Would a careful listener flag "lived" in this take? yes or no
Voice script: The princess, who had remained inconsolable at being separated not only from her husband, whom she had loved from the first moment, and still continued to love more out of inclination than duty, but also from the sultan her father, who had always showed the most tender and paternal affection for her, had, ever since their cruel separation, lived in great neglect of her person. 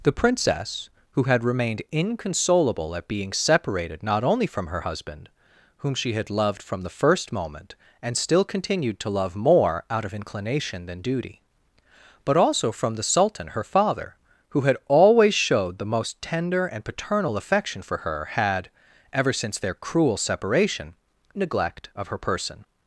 yes